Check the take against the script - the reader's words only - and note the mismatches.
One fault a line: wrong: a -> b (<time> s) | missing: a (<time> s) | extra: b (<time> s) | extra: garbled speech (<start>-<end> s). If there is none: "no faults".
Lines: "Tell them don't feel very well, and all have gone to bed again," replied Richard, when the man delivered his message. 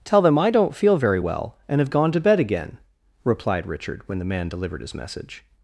extra: I (0.4 s)
missing: all (1.8 s)